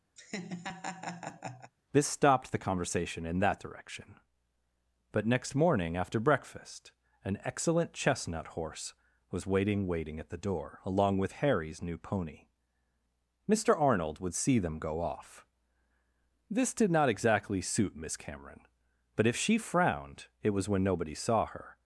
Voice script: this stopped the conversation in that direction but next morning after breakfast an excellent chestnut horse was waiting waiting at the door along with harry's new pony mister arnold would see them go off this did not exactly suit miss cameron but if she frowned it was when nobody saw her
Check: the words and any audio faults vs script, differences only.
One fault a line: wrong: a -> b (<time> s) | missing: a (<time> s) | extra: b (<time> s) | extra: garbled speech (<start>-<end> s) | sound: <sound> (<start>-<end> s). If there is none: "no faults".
sound: laugh (0.2-1.7 s)